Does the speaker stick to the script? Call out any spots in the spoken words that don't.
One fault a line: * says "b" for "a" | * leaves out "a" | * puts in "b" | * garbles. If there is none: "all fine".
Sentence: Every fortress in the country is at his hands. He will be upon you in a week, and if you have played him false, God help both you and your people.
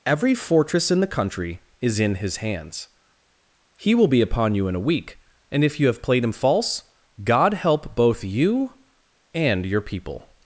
* says "in" for "at"